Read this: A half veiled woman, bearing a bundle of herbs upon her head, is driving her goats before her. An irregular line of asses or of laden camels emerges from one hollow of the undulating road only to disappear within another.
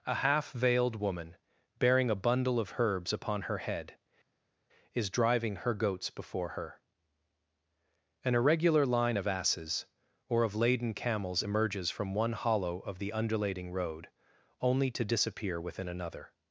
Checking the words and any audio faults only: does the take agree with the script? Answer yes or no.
yes